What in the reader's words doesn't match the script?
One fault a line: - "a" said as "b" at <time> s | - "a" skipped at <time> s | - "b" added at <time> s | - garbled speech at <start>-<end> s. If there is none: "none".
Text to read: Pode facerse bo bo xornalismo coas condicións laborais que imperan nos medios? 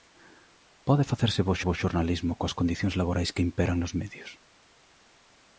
none